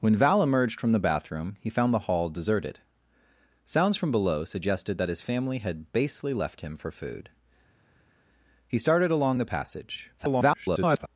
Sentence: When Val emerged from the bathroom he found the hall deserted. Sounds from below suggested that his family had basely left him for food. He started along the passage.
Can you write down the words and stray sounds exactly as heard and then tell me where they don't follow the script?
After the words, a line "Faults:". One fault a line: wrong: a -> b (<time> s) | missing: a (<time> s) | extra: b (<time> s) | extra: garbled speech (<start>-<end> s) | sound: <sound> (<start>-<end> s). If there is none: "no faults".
When Val emerged from the bathroom he found the hall deserted. Sounds from below suggested that his family had basely left him for food. He started along the passage. [garbled]
Faults:
extra: garbled speech (10.2-11.1 s)